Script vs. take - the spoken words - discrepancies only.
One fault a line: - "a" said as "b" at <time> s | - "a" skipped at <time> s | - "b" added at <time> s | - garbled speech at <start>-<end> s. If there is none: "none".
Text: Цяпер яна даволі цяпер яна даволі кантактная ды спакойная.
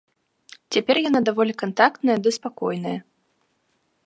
- "цяпер яна даволі" skipped at 1.5 s